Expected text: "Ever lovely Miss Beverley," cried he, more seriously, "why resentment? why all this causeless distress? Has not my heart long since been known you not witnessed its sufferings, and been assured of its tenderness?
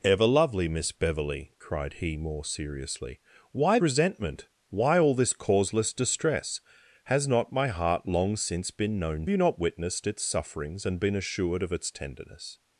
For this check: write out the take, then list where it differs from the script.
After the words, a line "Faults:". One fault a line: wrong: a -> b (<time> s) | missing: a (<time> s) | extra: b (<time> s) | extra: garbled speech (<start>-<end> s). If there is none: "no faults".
"Ever lovely Miss Beverley," cried he, more seriously, "why resentment? why all this causeless distress? Has not my heart long since been known you not witnessed its sufferings, and been assured of its tenderness?
Faults:
no faults